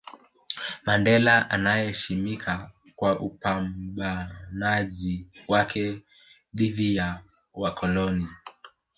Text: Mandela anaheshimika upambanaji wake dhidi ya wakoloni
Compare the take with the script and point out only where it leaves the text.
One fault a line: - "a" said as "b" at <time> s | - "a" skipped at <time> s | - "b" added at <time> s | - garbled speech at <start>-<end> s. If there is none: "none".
- "kwa" added at 3.0 s